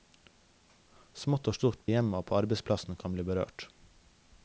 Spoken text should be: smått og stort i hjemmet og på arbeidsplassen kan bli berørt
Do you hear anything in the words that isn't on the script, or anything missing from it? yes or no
no